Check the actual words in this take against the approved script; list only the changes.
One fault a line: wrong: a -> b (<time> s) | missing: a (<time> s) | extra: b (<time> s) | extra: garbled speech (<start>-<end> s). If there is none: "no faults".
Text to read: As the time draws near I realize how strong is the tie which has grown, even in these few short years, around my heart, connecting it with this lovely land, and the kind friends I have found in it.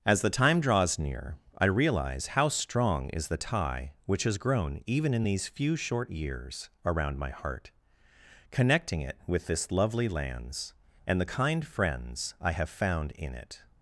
wrong: land -> lands (10.1 s)